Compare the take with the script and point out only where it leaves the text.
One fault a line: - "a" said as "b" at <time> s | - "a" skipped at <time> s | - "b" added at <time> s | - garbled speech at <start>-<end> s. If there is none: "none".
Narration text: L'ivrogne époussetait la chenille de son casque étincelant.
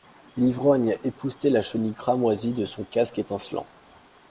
- "cramoisie" added at 1.9 s